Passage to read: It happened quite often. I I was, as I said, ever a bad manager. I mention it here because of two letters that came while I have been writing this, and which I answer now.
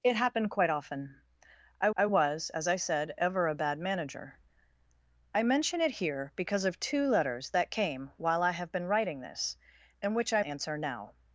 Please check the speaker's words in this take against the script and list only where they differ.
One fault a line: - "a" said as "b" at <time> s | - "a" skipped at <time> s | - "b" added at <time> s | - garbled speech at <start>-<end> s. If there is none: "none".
none